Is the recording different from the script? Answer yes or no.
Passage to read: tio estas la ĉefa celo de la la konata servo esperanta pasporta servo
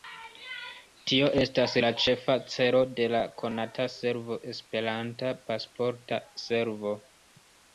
yes